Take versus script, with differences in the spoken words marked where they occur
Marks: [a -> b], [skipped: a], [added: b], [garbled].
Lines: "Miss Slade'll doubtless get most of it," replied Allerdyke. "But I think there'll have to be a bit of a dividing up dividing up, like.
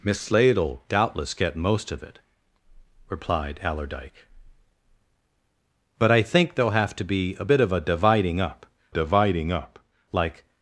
"Miss Slade'll doubtless get most of it," replied Allerdyke. "But I think there'll have to be a bit of a dividing up dividing up, like.